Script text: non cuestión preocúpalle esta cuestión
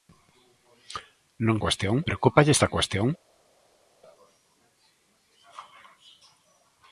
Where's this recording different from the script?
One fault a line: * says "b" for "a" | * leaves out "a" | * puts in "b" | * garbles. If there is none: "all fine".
all fine